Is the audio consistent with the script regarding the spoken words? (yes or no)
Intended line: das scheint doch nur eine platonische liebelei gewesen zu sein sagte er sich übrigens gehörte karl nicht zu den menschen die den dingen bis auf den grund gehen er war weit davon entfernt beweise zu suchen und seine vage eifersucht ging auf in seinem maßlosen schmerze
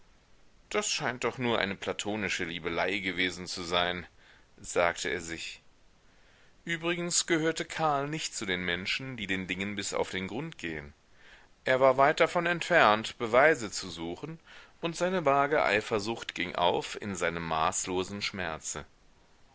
yes